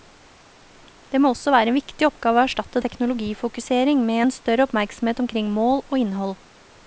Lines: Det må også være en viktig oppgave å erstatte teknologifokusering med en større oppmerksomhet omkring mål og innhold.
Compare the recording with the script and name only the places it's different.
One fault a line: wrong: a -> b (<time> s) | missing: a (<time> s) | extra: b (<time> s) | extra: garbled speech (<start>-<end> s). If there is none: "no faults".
no faults